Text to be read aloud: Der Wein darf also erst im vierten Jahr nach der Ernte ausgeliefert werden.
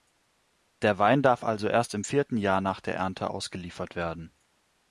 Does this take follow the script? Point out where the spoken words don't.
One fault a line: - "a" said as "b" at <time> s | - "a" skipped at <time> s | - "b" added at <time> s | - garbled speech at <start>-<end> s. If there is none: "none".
none